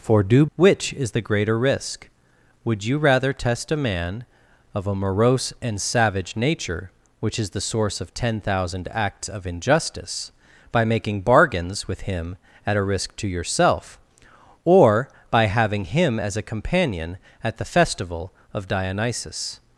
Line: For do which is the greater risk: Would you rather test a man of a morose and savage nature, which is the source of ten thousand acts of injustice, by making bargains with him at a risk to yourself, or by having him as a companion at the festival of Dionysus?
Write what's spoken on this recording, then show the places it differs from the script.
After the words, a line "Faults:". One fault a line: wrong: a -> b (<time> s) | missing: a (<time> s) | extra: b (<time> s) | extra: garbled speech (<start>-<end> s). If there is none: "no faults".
For do which is the greater risk: Would you rather test a man of a morose and savage nature, which is the source of ten thousand acts of injustice, by making bargains with him at a risk to yourself, or by having him as a companion at the festival of Dionysus?
Faults:
no faults